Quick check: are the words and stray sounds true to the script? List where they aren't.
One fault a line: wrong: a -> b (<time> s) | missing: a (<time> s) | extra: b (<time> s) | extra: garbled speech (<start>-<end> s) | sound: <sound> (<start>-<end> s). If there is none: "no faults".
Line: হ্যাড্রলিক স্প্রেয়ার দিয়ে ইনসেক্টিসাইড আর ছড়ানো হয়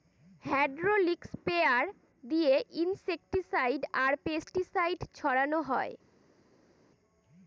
extra: পেস্টিসাইড (4.2 s)